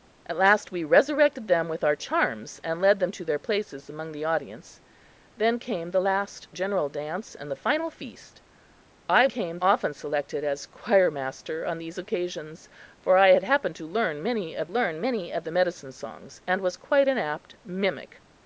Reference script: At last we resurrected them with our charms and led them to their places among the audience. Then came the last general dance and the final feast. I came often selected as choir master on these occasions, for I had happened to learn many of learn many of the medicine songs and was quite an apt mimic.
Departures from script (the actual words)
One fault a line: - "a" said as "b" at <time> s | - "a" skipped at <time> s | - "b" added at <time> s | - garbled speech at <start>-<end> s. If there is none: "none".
none